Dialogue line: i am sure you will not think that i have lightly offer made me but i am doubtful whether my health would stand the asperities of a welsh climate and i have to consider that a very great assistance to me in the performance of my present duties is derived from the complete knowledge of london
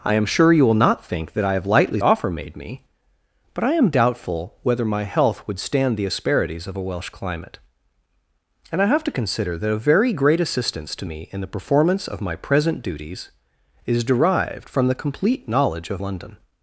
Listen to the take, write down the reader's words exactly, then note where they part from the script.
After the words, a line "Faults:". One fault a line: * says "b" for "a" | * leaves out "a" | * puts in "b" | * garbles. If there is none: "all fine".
i am sure you will not think that i have lightly offer made me but i am doubtful whether my health would stand the asperities of a welsh climate and i have to consider that a very great assistance to me in the performance of my present duties is derived from the complete knowledge of london
Faults:
all fine